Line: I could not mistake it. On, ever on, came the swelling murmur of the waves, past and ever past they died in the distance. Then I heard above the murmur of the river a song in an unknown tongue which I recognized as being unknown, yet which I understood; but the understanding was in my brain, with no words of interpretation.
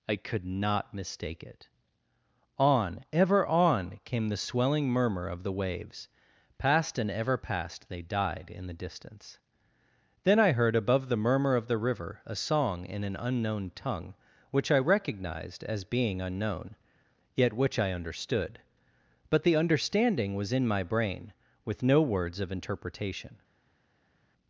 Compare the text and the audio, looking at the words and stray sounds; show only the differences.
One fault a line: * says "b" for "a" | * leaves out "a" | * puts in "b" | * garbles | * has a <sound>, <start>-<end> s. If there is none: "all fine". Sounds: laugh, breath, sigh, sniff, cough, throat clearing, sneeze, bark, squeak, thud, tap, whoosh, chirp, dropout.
all fine